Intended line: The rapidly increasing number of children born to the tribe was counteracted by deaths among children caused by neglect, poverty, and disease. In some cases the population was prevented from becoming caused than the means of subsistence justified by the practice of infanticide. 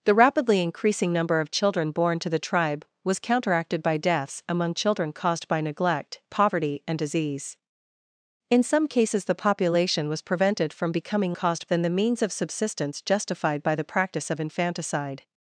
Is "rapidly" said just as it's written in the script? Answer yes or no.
yes